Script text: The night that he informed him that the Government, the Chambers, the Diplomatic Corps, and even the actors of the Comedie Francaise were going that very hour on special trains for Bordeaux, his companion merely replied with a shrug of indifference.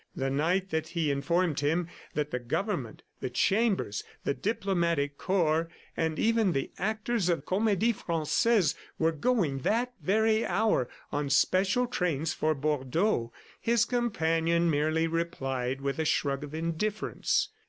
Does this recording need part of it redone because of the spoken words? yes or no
yes